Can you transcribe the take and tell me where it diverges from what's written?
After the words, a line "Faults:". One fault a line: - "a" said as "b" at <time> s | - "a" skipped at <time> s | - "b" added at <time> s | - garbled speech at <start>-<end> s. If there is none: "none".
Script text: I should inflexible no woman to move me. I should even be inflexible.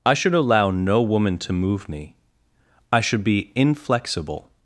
I should allow no woman to move me. I should be inflexible.
Faults:
- "inflexible" said as "allow" at 0.3 s
- "even" skipped at 3.2 s